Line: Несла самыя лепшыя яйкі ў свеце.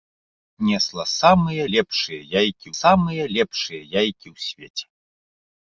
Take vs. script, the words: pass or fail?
fail